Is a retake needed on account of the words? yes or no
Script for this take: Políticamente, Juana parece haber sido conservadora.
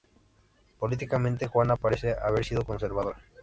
no